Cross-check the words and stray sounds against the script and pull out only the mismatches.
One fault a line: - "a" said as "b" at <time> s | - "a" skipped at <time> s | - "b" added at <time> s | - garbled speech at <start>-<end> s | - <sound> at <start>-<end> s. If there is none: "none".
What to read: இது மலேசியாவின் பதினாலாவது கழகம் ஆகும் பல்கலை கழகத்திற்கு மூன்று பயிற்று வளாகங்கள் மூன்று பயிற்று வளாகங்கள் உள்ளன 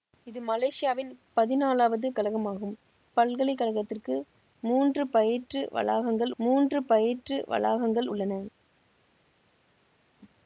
none